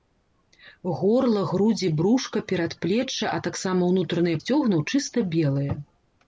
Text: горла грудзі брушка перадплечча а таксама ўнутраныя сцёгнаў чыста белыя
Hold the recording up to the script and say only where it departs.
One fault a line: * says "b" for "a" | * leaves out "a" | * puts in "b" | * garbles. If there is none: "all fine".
all fine